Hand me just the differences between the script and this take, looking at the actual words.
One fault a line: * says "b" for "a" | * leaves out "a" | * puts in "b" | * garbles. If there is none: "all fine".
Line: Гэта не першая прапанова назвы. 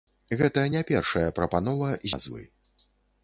all fine